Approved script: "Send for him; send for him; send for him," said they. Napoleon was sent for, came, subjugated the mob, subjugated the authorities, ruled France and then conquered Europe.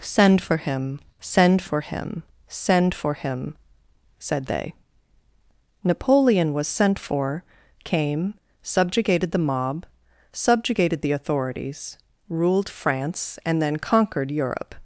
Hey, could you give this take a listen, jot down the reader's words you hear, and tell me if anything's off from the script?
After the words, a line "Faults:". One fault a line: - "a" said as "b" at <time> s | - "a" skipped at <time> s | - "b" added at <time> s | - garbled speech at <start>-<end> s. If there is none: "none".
"Send for him; send for him; send for him," said they. Napoleon was sent for, came, subjugated the mob, subjugated the authorities, ruled France and then conquered Europe.
Faults:
none